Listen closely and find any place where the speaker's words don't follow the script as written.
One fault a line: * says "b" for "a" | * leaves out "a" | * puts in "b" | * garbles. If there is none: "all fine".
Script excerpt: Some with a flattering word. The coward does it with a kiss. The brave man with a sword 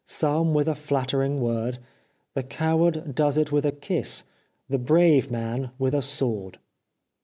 all fine